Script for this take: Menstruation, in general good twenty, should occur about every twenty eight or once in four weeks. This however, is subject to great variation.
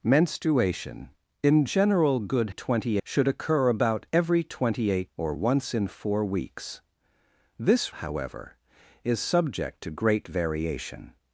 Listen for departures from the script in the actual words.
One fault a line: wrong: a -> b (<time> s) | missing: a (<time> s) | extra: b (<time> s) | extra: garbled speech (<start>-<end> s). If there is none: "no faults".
no faults